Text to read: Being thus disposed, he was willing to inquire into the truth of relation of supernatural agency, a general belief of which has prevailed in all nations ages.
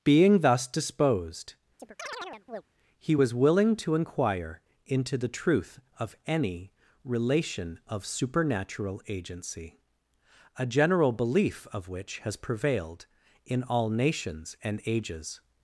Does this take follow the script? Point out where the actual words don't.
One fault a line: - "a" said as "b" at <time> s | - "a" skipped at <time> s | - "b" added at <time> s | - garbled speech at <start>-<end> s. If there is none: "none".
- "any" added at 6.3 s
- "and" added at 14.6 s